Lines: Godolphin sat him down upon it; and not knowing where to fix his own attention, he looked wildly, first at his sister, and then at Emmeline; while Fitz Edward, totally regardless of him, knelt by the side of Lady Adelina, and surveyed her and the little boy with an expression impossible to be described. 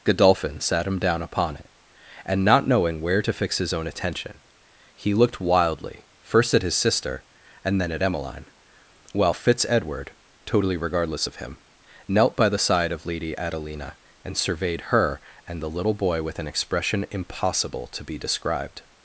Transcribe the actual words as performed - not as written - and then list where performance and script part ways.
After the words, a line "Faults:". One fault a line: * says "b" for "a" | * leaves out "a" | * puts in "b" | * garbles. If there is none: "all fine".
Godolphin sat him down upon it; and not knowing where to fix his own attention, he looked wildly, first at his sister, and then at Emmeline; while Fitz Edward, totally regardless of him, knelt by the side of Lady Adelina, and surveyed her and the little boy with an expression impossible to be described.
Faults:
all fine